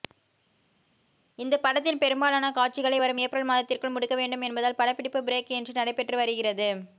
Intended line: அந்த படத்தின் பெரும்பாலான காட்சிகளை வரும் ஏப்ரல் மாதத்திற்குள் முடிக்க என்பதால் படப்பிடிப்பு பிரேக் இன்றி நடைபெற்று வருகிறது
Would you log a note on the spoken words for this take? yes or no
yes